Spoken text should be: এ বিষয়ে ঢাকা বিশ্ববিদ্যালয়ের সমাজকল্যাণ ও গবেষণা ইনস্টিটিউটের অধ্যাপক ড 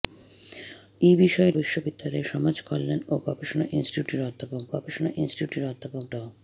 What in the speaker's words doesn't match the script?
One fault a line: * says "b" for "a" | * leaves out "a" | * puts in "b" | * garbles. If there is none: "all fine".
* leaves out "ঢাকা"
* puts in "গবেষণা ইনস্টিটিউটের অধ্যাপক"